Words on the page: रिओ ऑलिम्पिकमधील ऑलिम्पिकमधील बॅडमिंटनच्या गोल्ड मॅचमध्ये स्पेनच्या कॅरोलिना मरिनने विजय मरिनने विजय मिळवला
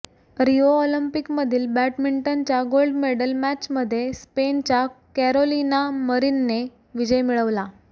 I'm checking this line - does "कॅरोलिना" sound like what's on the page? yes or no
yes